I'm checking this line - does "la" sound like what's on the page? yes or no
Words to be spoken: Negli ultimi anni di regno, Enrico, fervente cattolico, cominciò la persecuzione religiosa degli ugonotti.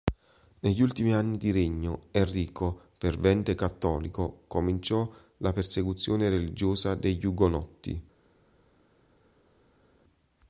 yes